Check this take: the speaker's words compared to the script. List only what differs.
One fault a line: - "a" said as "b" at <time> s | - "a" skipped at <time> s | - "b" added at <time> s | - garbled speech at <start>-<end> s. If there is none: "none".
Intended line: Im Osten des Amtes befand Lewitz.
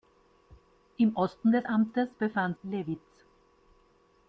none